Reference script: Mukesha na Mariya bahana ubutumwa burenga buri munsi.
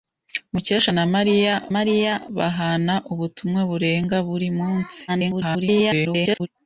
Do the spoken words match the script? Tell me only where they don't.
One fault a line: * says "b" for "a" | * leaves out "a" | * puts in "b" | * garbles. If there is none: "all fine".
* puts in "Mariya"
* garbles